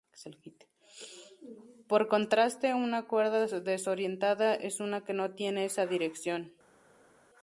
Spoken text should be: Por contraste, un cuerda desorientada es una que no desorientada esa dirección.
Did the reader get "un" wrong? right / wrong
wrong